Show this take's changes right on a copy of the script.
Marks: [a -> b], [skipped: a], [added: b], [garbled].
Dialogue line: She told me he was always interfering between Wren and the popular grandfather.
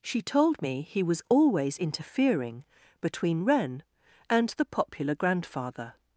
She told me he was always interfering between Wren and the popular grandfather.